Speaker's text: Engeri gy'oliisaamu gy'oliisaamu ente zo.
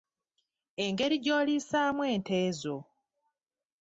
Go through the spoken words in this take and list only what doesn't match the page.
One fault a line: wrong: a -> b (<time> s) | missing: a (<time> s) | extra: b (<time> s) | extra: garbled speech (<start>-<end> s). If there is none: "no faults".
missing: gy'oliisaamu (2.0 s)